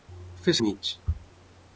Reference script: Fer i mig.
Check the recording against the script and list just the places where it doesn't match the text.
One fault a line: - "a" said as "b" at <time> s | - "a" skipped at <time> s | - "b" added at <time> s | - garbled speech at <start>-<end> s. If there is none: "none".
none